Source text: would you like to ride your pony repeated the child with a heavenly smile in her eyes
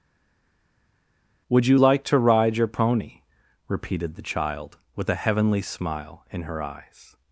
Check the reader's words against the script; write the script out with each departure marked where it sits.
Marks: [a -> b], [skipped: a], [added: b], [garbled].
would you like to ride your pony repeated the child with a heavenly smile in her eyes